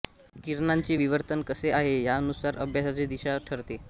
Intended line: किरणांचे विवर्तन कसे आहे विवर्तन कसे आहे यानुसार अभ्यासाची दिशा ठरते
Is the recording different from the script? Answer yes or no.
yes